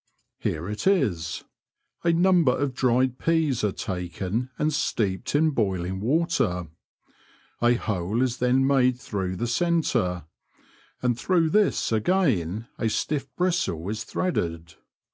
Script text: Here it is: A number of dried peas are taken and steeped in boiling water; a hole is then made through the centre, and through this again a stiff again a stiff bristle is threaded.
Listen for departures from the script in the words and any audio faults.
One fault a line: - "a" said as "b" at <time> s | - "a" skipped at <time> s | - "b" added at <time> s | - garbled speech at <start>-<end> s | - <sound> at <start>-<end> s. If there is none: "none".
- "again a stiff" skipped at 13.3 s